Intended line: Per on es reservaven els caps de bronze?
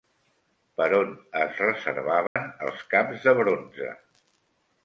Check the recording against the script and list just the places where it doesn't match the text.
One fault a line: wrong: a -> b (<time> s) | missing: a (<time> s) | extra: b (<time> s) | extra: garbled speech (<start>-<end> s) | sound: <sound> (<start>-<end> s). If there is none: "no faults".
sound: dropout (2.3-2.4 s)